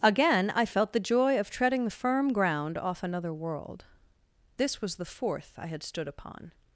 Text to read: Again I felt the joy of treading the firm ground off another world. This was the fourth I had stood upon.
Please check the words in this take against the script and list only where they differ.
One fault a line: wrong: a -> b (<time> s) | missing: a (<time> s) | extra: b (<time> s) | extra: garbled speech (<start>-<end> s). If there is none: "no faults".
no faults